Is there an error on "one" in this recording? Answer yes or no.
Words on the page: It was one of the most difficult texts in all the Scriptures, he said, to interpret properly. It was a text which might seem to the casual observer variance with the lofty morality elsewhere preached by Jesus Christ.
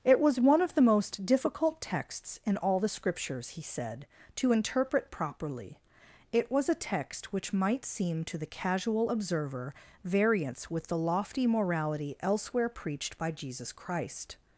no